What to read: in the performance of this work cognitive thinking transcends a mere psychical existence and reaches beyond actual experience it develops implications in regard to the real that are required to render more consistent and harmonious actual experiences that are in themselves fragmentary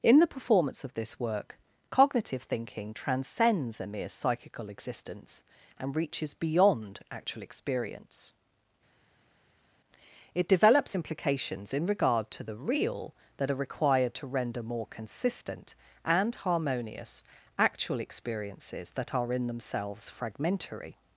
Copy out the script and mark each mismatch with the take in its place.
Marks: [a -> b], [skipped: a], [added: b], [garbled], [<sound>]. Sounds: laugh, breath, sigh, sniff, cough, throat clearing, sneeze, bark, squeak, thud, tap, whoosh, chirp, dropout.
in the performance of this work cognitive thinking transcends a mere psychical existence and reaches beyond actual experience it develops implications in regard to the real that are required to render more consistent and harmonious actual experiences that are in themselves fragmentary